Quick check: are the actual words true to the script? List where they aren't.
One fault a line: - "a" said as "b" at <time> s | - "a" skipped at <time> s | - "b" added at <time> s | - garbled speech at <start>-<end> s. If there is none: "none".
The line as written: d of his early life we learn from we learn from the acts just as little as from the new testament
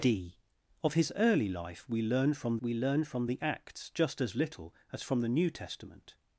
none